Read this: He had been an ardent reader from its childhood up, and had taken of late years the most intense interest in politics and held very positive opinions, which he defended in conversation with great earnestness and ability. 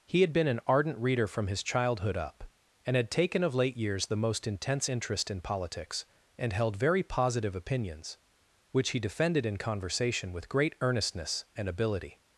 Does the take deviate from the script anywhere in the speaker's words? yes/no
yes